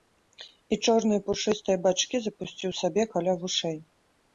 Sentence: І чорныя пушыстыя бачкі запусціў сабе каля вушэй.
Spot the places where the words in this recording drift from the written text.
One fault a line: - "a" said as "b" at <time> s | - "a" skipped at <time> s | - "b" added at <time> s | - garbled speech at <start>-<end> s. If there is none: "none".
none